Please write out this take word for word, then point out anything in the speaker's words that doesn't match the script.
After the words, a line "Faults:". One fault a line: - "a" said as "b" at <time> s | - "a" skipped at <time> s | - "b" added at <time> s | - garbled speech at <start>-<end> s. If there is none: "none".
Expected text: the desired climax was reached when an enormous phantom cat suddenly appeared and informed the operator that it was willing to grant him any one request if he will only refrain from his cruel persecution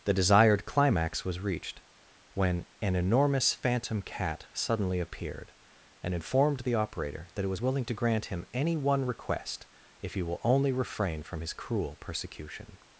the desired climax was reached when an enormous phantom cat suddenly appeared and informed the operator that it was willing to grant him any one request if he will only refrain from his cruel persecution
Faults:
none